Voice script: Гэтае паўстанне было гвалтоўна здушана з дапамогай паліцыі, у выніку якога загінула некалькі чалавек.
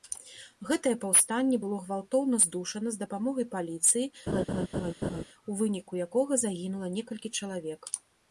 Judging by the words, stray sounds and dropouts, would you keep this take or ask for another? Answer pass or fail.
fail